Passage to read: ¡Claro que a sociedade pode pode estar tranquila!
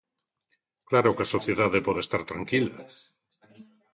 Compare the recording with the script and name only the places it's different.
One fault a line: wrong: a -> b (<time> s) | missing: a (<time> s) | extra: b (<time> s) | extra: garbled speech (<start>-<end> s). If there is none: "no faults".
missing: pode (2.0 s)